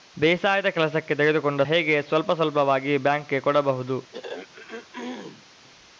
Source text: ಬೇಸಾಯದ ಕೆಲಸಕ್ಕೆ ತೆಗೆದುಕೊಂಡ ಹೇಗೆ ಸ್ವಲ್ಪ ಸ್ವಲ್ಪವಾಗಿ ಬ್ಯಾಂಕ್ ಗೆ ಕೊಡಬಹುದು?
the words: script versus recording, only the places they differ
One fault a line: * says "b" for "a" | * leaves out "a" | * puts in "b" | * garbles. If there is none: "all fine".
all fine